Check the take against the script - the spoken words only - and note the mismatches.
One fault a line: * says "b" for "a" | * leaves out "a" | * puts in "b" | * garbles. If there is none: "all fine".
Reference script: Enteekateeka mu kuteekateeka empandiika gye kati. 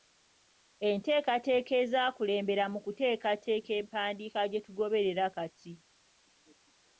* puts in "ezaakulembera"
* puts in "tugoberera"